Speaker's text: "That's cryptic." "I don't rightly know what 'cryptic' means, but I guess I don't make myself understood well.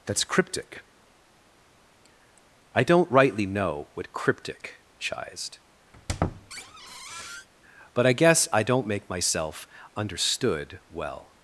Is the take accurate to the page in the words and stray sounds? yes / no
no